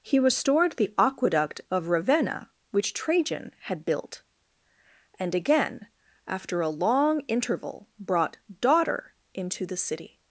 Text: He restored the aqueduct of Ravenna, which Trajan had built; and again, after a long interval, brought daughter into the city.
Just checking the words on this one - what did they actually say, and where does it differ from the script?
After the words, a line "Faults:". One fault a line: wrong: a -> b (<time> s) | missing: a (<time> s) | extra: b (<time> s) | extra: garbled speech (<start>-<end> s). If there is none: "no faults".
He restored the aqueduct of Ravenna, which Trajan had built; and again, after a long interval, brought daughter into the city.
Faults:
no faults